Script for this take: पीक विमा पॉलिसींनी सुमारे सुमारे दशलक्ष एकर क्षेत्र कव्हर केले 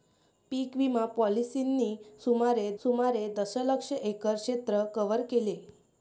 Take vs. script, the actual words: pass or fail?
pass